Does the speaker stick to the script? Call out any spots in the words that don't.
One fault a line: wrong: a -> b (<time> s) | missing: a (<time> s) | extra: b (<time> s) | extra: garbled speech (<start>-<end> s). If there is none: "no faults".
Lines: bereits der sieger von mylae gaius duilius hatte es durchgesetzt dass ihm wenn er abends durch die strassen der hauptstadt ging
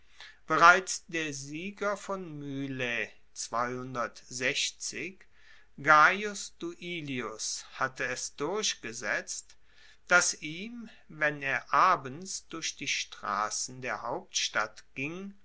no faults